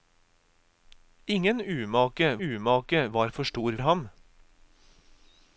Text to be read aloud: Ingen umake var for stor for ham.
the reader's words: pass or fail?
fail